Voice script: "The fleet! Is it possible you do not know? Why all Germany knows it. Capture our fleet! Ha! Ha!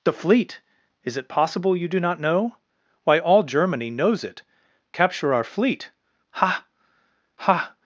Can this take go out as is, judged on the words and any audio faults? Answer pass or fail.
pass